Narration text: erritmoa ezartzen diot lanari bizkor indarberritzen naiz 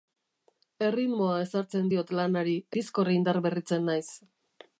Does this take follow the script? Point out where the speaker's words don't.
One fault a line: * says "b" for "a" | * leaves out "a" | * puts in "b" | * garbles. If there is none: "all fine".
all fine